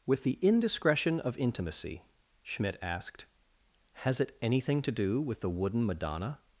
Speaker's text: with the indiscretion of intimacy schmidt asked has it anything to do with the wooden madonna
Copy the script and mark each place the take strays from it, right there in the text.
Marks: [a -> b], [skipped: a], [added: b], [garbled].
with the indiscretion of intimacy schmidt asked has it anything to do with the wooden madonna